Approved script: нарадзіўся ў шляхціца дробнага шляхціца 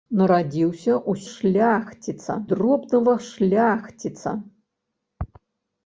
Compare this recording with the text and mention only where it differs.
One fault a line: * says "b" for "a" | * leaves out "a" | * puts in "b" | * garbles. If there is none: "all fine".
all fine